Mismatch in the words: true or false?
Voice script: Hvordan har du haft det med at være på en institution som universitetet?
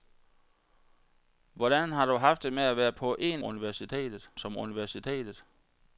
true